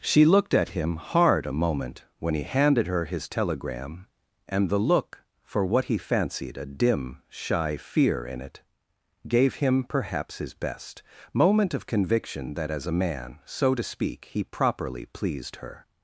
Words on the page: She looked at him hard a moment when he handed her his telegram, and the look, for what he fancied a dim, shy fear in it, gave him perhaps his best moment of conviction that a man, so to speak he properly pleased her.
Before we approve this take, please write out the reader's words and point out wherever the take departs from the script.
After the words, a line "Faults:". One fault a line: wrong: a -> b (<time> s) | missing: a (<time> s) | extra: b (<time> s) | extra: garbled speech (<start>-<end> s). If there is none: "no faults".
She looked at him hard a moment when he handed her his telegram, and the look, for what he fancied a dim, shy fear in it, gave him perhaps his best moment of conviction that as a man, so to speak he properly pleased her.
Faults:
extra: as (12.7 s)